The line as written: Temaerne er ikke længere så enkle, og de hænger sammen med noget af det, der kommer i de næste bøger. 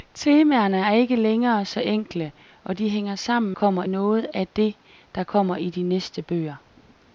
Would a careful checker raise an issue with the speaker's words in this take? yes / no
yes